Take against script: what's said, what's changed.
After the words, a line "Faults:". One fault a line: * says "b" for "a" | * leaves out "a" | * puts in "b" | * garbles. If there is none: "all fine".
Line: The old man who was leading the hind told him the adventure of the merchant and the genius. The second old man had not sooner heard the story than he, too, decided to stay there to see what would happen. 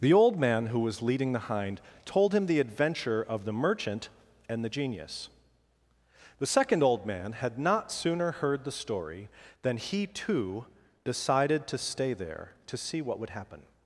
The old man who was leading the hind told him the adventure of the merchant and the genius. The second old man had not sooner heard the story than he, too, decided to stay there to see what would happen.
Faults:
all fine